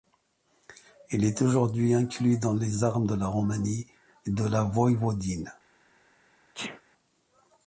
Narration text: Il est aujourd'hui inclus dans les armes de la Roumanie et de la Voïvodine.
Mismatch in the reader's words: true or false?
false